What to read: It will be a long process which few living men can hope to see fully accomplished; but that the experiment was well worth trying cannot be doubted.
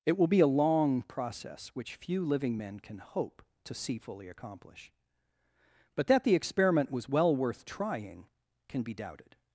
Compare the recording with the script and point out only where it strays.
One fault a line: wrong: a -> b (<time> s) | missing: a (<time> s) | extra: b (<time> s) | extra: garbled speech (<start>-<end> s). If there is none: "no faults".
wrong: accomplished -> accomplish (4.3 s)
wrong: cannot -> can (8.7 s)